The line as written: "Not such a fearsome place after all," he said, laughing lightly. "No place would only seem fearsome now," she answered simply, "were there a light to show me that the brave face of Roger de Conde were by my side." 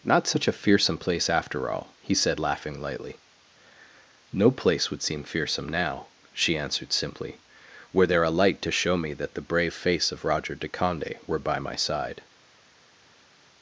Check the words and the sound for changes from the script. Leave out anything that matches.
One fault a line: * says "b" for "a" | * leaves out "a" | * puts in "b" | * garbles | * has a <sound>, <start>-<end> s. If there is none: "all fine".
* leaves out "only"